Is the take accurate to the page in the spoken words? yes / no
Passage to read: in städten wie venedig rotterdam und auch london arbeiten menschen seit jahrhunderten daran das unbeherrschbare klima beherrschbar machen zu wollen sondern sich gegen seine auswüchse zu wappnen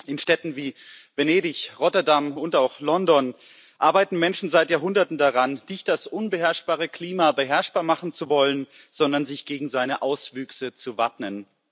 no